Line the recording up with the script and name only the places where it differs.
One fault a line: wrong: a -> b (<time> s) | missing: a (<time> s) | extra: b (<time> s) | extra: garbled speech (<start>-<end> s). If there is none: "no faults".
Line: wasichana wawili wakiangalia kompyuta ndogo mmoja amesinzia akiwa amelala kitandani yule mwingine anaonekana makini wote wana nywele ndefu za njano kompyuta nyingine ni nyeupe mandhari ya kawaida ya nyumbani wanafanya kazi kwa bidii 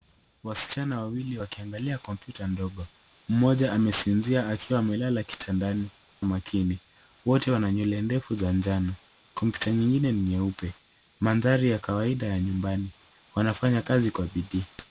missing: yule mwingine anaonekana (5.9 s)